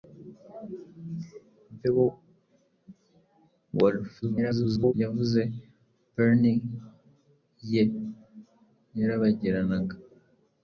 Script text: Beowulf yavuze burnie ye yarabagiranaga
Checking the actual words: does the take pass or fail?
fail